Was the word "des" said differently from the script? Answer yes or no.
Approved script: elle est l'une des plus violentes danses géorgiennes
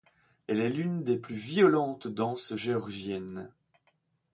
no